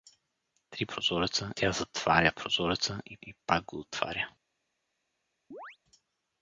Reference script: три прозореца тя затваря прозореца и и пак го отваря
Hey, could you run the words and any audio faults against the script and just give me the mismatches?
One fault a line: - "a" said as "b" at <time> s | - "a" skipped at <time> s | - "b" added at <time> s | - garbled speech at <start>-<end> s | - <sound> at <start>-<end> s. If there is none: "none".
- chirp at 5.5-5.8 s